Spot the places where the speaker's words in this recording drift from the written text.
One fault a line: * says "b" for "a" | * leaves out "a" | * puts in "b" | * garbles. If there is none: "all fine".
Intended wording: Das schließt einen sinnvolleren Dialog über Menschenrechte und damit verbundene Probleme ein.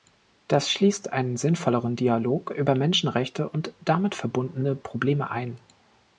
all fine